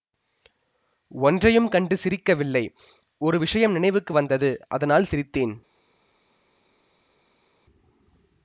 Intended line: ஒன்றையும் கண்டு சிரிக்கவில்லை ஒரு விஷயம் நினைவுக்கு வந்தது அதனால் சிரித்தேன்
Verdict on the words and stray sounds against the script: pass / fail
pass